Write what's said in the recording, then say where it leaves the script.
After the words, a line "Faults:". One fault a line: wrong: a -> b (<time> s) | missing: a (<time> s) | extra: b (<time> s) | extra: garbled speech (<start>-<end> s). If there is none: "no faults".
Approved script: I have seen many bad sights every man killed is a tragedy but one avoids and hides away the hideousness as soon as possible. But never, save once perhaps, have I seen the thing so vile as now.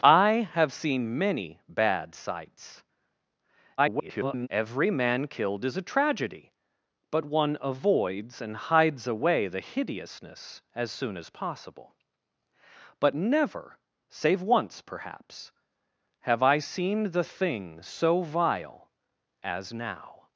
I have seen many bad sights [garbled] every man killed is a tragedy but one avoids and hides away the hideousness as soon as possible. But never, save once perhaps, have I seen the thing so vile as now.
Faults:
extra: garbled speech (3.8-4.5 s)